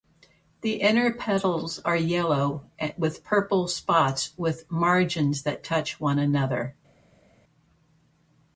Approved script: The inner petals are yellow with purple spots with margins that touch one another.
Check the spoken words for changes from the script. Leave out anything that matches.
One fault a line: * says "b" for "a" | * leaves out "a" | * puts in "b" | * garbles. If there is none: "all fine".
all fine